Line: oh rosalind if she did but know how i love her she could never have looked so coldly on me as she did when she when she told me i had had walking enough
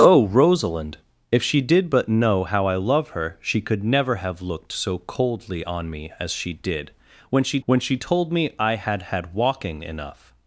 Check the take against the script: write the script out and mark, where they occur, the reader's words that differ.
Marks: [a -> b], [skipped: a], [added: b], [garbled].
oh rosalind if she did but know how i love her she could never have looked so coldly on me as she did when she when she told me i had had walking enough